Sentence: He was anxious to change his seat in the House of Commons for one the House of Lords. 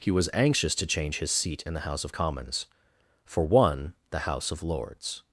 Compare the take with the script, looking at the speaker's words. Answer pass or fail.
pass